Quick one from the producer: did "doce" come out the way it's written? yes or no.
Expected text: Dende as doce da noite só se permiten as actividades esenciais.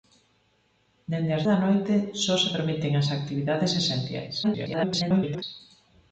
no